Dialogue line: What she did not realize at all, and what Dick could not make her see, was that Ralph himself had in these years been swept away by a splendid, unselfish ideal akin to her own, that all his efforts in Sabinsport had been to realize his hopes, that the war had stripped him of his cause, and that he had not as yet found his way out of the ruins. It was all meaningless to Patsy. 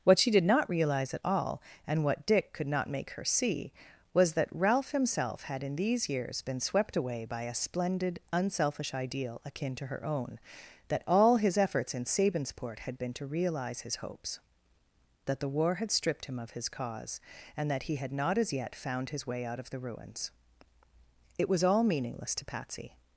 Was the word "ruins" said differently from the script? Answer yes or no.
no